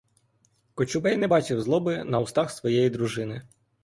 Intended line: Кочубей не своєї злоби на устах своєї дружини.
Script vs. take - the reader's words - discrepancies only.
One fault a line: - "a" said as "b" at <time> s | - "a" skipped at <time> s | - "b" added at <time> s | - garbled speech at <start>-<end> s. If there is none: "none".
- "своєї" said as "бачив" at 1.3 s